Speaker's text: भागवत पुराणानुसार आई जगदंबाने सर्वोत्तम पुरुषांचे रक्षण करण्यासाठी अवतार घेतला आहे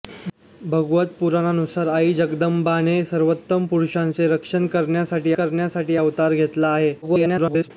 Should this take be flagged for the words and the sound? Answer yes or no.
yes